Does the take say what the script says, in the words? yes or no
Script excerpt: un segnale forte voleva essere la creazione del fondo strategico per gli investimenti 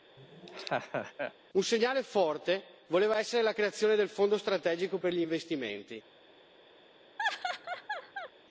yes